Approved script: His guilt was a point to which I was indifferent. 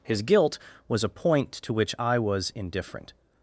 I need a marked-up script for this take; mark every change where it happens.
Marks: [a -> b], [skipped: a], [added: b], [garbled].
His guilt was a point to which I was indifferent.